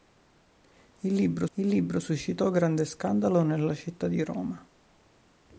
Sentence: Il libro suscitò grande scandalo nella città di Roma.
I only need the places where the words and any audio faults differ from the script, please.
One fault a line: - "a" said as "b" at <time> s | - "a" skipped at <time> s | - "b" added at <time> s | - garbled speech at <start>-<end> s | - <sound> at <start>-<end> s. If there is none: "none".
- "il libro" added at 1.5 s